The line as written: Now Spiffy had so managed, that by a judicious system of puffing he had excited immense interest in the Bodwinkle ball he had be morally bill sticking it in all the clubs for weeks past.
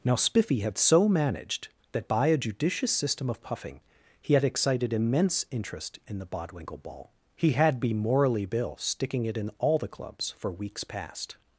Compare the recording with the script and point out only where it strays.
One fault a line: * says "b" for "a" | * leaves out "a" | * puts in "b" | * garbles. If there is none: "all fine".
all fine